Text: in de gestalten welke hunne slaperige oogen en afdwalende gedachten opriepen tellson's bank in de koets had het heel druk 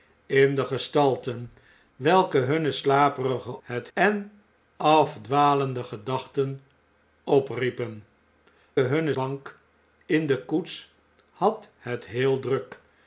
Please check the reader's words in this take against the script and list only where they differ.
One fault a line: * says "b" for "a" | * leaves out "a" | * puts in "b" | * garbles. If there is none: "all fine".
* says "het" for "oogen"
* says "hunne" for "tellson's"